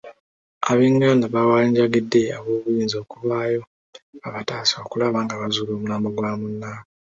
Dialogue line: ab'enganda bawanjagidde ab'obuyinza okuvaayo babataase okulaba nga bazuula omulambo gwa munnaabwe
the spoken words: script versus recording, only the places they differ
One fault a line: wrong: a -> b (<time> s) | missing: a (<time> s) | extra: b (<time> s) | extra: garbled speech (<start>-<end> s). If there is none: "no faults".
no faults